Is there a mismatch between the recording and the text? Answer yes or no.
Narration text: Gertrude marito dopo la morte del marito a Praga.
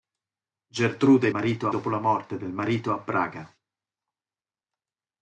no